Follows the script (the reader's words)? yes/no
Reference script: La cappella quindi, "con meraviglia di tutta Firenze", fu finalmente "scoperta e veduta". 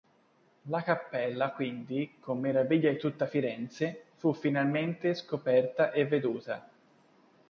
yes